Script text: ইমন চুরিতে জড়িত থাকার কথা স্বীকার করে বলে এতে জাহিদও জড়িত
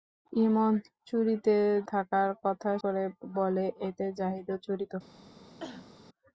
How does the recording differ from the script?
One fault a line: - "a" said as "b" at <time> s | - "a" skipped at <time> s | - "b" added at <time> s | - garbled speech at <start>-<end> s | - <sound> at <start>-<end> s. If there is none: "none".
- "জড়িত" skipped at 1.6 s
- "স্বীকার" skipped at 2.7 s
- cough at 5.6-5.9 s